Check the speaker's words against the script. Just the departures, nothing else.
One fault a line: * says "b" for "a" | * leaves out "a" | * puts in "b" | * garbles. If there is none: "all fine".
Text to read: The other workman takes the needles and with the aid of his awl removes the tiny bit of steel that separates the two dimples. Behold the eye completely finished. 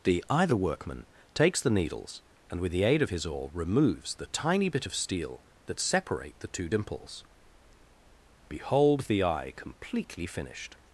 * says "either" for "other"
* says "separate" for "separates"